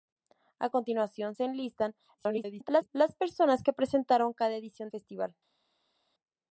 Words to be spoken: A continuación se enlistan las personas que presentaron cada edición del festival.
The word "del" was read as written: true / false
false